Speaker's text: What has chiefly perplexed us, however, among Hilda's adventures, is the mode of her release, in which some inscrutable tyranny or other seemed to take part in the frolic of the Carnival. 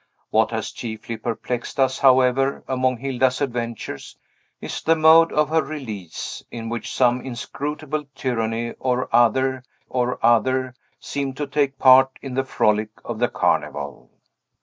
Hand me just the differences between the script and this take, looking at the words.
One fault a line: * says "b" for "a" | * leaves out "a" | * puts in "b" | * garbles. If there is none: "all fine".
* puts in "or other"